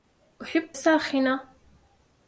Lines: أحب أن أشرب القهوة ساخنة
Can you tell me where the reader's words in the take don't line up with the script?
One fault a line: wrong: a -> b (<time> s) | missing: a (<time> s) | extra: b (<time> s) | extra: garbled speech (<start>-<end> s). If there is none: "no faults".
missing: أن أشرب القهوة (0.8 s)